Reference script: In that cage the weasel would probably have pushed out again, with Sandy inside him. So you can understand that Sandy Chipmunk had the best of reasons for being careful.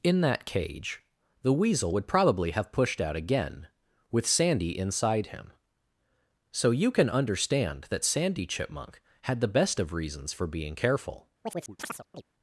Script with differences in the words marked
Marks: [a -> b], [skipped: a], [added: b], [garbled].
In that cage the weasel would probably have pushed out again, with Sandy inside him. So you can understand that Sandy Chipmunk had the best of reasons for being careful.